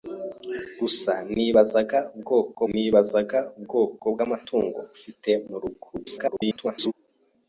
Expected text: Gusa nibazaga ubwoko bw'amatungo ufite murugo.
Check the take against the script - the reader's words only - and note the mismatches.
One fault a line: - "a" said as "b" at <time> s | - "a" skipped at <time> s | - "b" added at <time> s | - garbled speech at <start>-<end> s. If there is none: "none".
- "nibazaga ubwoko" added at 2.7 s
- garbled speech at 5.9-6.9 s